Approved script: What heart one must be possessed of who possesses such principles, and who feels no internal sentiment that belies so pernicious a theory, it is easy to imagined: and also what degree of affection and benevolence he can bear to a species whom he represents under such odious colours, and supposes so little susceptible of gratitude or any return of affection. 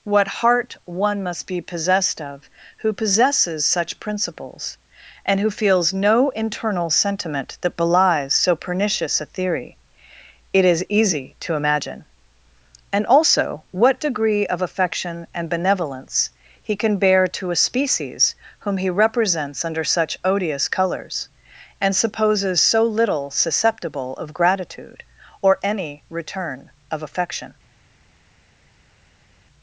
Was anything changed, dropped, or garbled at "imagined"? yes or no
yes